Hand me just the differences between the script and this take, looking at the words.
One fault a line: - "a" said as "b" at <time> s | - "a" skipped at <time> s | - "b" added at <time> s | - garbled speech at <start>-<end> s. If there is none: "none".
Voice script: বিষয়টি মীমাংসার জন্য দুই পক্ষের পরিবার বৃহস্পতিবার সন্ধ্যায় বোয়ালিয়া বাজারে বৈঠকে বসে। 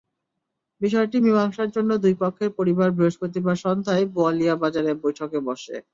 none